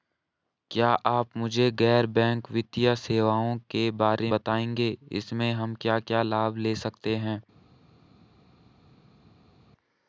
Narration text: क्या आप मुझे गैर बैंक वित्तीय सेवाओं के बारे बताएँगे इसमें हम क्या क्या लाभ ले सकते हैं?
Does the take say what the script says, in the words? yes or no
yes